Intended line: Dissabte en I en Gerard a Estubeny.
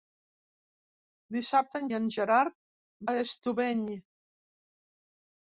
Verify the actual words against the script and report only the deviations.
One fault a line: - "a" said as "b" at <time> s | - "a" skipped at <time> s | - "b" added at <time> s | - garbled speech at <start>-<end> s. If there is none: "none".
none